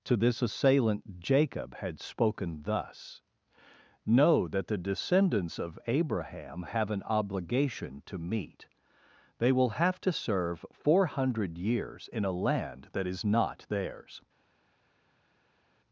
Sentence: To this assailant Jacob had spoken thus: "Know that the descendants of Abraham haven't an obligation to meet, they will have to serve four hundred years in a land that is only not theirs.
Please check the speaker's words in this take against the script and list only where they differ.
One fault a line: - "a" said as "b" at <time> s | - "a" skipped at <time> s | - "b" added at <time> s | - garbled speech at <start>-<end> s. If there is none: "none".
- "haven't" said as "have" at 6.6 s
- "only" skipped at 13.2 s